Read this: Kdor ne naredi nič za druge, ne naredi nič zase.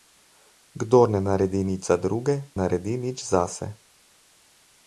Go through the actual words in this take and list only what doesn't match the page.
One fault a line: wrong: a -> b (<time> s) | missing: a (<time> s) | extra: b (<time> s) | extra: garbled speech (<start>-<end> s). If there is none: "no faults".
missing: ne (2.4 s)